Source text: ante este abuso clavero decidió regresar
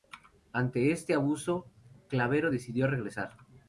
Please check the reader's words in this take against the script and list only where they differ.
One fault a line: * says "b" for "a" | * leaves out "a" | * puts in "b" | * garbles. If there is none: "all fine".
all fine